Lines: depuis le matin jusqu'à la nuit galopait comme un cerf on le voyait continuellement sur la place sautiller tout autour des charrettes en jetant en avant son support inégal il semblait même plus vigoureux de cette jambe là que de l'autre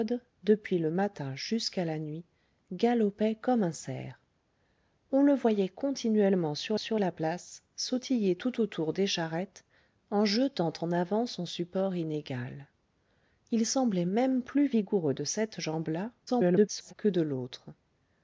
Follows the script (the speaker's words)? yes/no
no